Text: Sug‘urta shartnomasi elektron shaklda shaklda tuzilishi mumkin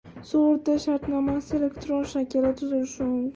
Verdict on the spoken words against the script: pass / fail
fail